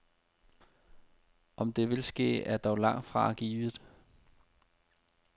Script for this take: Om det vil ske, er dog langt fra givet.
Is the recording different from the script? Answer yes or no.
no